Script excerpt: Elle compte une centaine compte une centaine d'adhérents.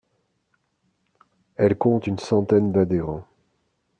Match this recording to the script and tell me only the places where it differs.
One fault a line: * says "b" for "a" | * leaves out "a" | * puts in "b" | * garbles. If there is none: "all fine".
* leaves out "compte une centaine"